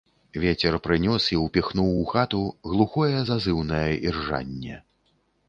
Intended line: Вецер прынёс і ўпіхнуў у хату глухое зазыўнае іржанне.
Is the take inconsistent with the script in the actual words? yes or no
no